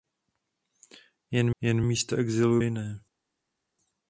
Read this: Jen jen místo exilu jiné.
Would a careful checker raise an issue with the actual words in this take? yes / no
no